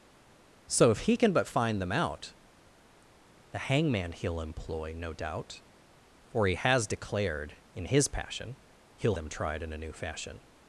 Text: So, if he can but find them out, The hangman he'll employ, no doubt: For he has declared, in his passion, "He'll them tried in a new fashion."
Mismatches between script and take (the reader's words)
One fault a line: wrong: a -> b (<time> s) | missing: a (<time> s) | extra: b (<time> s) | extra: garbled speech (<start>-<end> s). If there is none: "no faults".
no faults